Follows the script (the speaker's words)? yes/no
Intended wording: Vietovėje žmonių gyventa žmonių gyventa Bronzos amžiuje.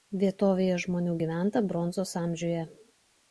no